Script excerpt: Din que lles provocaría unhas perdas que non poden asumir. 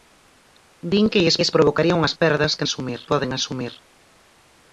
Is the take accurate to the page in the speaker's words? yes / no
no